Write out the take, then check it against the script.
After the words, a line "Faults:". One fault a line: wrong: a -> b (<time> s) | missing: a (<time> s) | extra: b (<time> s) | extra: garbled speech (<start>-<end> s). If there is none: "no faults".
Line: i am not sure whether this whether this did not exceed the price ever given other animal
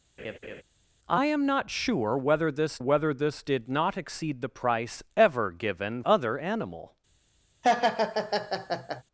i am not sure whether this whether this did not exceed the price ever given other animal
Faults:
no faults